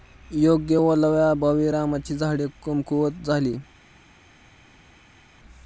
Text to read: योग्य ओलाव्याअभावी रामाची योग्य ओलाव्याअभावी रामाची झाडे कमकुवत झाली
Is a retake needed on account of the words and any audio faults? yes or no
yes